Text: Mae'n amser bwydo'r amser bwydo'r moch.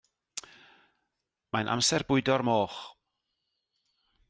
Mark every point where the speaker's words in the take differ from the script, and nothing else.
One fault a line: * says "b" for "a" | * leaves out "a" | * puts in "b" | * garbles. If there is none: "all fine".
* leaves out "amser bwydo'r"